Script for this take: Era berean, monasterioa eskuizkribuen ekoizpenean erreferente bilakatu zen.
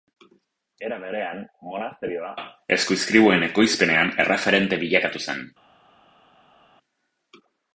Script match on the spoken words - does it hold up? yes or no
yes